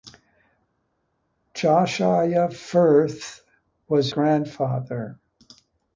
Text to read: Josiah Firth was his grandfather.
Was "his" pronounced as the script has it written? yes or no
no